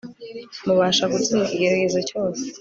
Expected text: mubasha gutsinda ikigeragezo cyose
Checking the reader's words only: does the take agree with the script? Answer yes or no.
yes